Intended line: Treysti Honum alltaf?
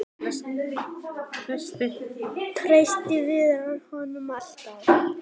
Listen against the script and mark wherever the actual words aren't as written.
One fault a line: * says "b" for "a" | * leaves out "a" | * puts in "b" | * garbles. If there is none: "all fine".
* puts in "Viðar"